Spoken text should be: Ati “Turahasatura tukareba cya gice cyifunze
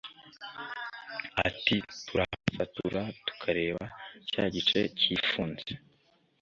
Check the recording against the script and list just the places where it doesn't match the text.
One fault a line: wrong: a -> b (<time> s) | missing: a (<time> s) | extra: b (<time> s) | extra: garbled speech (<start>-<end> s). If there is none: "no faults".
no faults